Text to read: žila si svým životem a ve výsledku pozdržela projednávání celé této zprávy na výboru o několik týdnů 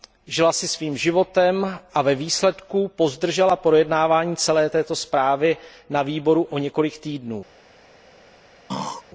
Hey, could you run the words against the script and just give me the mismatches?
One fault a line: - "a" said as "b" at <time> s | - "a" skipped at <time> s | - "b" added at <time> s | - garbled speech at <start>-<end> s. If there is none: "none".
none